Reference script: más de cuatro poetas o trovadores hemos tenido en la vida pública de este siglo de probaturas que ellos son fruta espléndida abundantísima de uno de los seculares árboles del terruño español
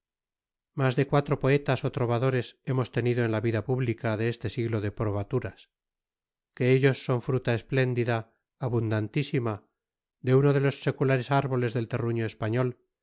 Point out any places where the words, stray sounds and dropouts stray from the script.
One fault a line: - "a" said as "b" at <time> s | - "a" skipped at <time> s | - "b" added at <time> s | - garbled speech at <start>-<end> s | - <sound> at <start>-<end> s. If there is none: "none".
none